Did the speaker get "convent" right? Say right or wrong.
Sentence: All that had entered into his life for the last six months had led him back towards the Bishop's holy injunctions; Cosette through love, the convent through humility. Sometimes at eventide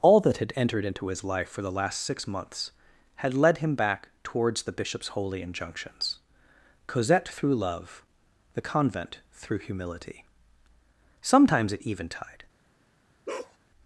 right